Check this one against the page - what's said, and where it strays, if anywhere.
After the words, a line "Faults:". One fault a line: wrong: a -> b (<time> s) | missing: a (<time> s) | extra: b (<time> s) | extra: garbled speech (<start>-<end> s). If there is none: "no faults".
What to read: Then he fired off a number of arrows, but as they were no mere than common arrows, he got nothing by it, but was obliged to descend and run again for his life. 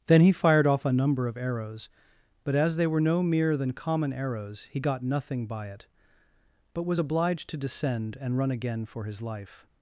Then he fired off a number of arrows, but as they were no mere than common arrows, he got nothing by it, but was obliged to descend and run again for his life.
Faults:
no faults